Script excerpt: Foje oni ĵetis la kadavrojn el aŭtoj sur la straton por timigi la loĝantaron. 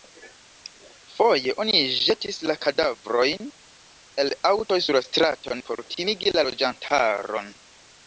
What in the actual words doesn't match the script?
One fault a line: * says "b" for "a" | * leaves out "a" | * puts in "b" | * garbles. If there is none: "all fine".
all fine